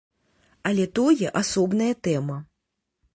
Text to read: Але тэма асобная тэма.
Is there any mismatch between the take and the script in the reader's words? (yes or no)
yes